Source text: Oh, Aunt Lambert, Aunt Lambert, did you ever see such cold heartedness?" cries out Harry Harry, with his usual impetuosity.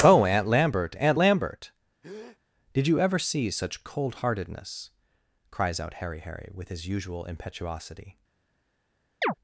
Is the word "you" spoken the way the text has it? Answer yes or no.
yes